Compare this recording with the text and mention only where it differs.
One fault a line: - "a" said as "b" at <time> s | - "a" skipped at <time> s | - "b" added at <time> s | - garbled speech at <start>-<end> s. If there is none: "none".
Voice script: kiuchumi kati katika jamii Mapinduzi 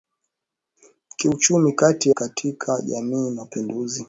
none